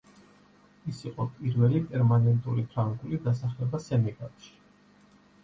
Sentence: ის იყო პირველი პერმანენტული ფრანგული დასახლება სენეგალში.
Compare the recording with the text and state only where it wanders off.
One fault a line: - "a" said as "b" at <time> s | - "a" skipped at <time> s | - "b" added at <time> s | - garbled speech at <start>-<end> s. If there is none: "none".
none